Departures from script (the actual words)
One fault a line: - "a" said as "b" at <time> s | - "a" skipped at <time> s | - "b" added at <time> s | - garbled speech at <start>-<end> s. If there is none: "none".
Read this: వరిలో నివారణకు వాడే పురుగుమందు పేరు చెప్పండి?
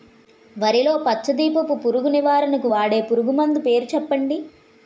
- "పచ్చ దీపపు పురుగు" added at 1.1 s